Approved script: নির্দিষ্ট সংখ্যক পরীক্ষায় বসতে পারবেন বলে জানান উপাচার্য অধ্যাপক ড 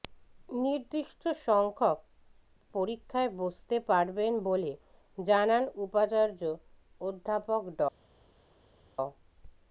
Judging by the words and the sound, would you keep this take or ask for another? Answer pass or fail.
pass